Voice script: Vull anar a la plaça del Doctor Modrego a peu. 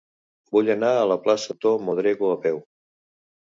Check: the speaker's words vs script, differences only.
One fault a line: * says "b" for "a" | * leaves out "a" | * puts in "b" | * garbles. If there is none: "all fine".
* leaves out "del"